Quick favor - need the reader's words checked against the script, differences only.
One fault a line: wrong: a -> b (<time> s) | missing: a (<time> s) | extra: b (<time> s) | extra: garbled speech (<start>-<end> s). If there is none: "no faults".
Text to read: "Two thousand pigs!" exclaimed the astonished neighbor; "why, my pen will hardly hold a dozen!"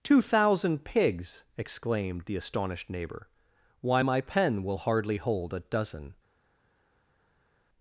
no faults